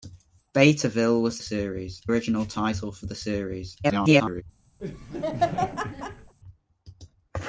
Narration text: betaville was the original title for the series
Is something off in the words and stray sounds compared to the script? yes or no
yes